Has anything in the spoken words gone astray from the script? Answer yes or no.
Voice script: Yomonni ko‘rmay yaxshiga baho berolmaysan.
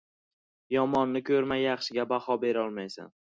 no